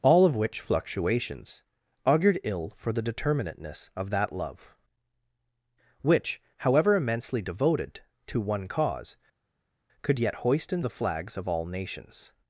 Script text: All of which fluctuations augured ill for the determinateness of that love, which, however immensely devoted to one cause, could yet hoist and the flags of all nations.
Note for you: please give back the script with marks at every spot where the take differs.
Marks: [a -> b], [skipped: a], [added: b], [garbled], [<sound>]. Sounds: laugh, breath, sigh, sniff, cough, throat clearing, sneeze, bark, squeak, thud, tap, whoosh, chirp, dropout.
All of which fluctuations augured ill for the determinateness of that love, which, however immensely devoted to one cause, could yet hoist and the flags of all nations.